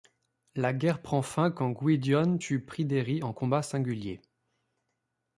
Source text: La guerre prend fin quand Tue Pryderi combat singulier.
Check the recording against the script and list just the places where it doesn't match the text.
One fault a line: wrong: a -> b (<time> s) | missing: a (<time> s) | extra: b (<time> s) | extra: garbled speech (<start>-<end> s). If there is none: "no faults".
extra: Gwydion (1.7 s)
extra: en (3.2 s)